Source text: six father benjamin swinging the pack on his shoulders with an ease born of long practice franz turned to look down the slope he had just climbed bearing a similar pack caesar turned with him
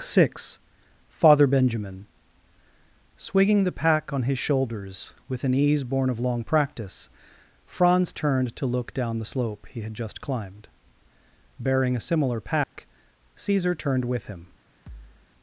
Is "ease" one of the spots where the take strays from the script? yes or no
no